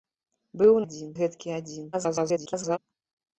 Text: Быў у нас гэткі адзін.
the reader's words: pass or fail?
fail